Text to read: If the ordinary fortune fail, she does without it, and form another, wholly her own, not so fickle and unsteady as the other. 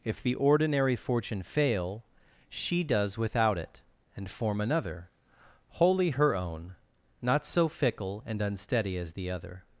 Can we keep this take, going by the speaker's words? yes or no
yes